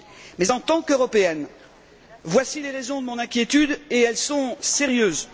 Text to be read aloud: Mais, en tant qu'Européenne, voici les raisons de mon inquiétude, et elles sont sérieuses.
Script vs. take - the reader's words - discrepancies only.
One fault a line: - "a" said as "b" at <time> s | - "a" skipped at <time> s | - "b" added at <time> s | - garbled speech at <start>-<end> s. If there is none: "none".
none